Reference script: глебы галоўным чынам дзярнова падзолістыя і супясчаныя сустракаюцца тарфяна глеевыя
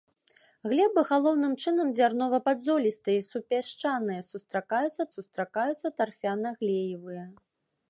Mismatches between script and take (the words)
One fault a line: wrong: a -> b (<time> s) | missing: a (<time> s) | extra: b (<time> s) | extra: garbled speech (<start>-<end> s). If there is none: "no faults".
extra: сустракаюцца (5.1 s)